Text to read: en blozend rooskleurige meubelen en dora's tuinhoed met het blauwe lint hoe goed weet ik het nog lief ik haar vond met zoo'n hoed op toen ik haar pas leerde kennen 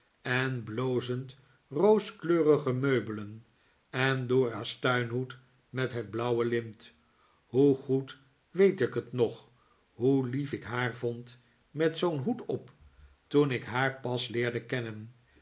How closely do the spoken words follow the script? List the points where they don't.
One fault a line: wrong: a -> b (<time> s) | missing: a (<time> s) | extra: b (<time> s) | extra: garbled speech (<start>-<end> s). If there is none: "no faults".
extra: hoe (9.9 s)